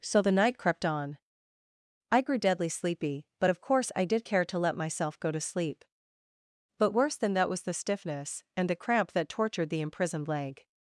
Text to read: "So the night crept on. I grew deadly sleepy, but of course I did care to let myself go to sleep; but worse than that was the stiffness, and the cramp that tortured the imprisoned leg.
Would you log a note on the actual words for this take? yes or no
no